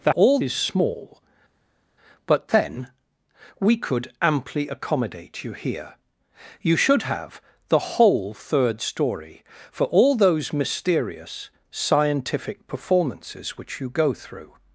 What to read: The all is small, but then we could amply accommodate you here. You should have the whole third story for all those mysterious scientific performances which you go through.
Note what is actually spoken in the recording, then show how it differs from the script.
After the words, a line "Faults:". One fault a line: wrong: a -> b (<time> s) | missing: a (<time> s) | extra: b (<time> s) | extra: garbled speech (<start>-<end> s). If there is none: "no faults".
The all is small, but then we could amply accommodate you here. You should have the whole third story for all those mysterious scientific performances which you go through.
Faults:
no faults